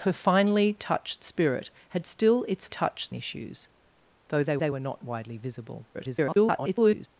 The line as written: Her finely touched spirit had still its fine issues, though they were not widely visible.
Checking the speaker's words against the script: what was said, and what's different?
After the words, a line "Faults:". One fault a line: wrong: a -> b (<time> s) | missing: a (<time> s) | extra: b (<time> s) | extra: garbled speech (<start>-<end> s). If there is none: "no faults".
Her finely touched spirit had still its touched issues, though they they were not widely visible. [garbled]
Faults:
wrong: fine -> touched (2.6 s)
extra: they (4.6 s)
extra: garbled speech (5.9-7.1 s)